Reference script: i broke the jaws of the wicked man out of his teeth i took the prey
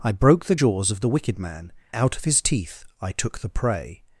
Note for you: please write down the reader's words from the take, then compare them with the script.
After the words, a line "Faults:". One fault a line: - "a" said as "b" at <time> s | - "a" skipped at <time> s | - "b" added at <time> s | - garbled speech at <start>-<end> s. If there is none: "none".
i broke the jaws of the wicked man out of his teeth i took the prey
Faults:
none